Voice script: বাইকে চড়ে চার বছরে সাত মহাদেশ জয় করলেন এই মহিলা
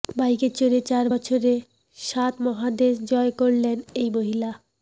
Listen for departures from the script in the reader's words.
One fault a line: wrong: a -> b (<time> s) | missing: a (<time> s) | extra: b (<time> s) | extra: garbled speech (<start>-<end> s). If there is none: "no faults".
no faults